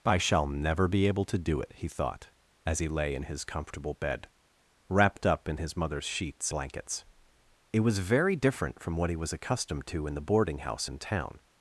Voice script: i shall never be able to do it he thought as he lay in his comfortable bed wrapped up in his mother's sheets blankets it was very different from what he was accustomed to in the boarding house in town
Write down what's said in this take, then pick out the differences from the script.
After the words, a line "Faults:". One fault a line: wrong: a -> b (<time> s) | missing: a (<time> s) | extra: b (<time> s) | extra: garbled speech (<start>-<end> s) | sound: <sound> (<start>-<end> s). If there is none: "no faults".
i shall never be able to do it he thought as he lay in his comfortable bed wrapped up in his mother's sheets blankets it was very different from what he was accustomed to in the boarding house in town
Faults:
no faults